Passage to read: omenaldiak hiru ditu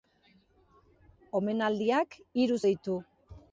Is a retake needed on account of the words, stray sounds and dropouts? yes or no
no